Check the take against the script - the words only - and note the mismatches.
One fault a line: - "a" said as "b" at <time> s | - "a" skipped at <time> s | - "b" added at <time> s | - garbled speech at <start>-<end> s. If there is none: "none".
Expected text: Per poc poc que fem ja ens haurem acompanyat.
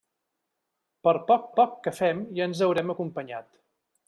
none